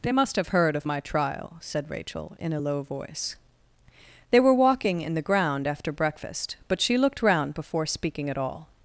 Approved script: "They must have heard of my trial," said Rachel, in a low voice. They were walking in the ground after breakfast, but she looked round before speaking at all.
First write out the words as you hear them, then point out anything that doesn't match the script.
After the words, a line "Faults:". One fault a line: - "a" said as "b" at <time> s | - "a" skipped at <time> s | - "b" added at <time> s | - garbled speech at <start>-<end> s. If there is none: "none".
"They must have heard of my trial," said Rachel, in a low voice. They were walking in the ground after breakfast, but she looked round before speaking at all.
Faults:
none